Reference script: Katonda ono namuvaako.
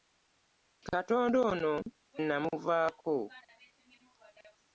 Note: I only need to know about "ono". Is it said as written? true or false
true